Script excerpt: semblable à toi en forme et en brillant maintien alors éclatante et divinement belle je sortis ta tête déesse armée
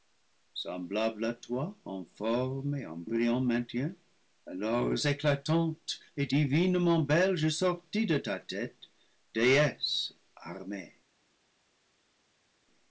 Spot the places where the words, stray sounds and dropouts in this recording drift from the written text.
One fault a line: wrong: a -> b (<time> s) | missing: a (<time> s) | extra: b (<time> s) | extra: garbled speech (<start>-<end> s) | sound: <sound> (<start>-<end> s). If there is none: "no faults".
extra: de (8.1 s)